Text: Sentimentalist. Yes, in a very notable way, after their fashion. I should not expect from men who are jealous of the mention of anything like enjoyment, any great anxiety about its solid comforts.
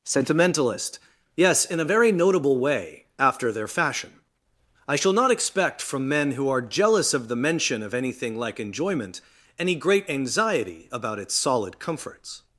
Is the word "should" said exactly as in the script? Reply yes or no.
no